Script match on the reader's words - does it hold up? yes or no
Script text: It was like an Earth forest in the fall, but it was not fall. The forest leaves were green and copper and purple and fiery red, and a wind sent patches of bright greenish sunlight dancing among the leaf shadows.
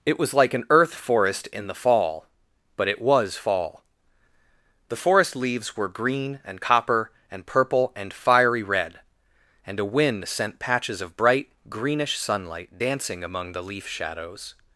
no